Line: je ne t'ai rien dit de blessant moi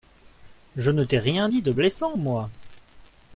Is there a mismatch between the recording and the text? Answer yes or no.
no